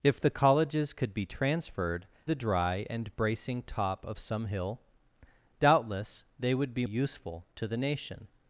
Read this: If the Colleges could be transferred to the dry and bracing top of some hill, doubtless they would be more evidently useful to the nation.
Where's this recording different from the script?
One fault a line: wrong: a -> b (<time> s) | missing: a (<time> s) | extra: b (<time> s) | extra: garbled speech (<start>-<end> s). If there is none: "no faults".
missing: to (2.1 s)
missing: more evidently (6.9 s)